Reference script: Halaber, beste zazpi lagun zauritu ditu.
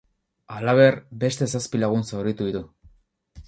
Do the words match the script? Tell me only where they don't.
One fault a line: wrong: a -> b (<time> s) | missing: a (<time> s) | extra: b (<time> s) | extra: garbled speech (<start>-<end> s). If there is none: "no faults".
no faults